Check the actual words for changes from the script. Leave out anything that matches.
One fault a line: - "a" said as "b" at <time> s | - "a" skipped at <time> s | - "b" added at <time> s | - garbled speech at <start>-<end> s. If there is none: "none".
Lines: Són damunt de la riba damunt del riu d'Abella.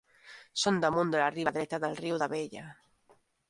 - "damunt" said as "dreta" at 1.6 s